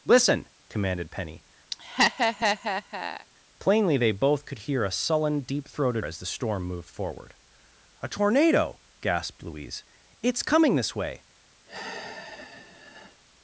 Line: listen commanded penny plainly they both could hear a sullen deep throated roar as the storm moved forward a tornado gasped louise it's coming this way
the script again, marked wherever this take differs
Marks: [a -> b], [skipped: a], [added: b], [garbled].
listen commanded penny plainly they both could hear a sullen deep throated [skipped: roar] as the storm moved forward a tornado gasped louise it's coming this way